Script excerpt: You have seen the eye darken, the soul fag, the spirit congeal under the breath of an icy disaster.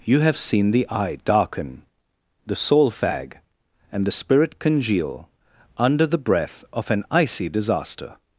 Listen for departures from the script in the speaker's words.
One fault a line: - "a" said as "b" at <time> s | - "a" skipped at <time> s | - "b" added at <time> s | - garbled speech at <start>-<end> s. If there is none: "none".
- "and" added at 3.9 s